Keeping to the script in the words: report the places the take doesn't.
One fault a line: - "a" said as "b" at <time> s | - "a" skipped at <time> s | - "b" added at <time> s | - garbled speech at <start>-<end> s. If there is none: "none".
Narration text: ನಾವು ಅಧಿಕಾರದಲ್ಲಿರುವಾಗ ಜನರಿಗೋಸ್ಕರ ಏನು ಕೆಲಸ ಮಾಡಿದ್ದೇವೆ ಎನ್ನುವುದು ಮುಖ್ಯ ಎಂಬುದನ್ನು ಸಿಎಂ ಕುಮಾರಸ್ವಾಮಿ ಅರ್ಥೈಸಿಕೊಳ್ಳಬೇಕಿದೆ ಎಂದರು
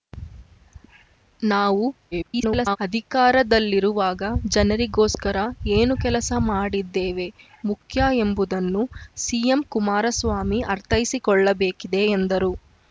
- garbled speech at 2.1-2.8 s
- "ಎನ್ನುವುದು" skipped at 7.3 s